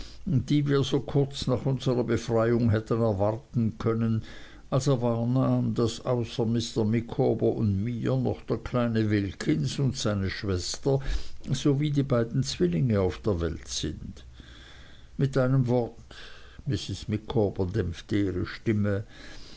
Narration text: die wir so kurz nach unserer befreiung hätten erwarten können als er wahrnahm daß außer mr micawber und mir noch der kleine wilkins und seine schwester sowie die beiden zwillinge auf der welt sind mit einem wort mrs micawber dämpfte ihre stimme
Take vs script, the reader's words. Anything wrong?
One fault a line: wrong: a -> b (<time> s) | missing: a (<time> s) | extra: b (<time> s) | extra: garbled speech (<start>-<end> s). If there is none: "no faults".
no faults